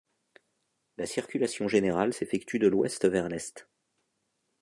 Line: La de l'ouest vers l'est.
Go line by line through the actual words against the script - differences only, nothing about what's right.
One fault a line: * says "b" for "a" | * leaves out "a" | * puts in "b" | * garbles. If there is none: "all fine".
* puts in "circulation générale s'effectue"